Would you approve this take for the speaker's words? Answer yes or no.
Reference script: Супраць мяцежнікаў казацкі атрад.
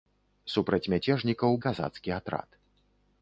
yes